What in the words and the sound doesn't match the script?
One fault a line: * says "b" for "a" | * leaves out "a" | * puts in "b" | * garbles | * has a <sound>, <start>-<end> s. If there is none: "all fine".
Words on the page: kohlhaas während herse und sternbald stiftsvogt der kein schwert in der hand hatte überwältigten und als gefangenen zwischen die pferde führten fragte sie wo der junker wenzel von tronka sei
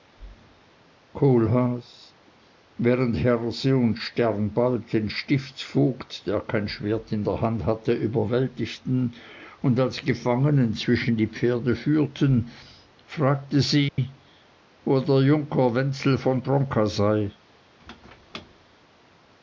* puts in "den"
* has a dropout, 13.9-14.0 s
* has a squeak, 17.8-18.7 s